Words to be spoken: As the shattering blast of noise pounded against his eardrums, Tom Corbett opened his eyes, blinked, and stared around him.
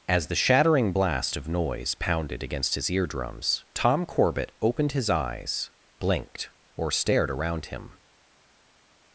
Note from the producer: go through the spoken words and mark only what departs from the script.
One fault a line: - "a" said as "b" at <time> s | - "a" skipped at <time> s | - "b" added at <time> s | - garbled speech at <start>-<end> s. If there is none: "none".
- "and" said as "or" at 6.8 s